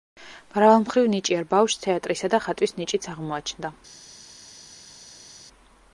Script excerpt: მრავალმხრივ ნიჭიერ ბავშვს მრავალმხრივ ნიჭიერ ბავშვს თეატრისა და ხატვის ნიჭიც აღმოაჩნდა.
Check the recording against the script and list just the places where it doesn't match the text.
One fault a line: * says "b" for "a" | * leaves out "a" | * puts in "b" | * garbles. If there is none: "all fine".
* leaves out "მრავალმხრივ ნიჭიერ ბავშვს"